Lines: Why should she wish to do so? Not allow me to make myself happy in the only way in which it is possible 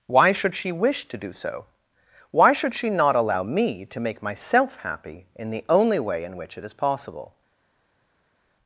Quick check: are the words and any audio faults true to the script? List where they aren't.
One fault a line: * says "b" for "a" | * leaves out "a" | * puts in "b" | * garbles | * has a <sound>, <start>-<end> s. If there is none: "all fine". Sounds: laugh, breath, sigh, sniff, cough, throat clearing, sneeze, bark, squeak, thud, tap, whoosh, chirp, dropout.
* puts in "Why should she"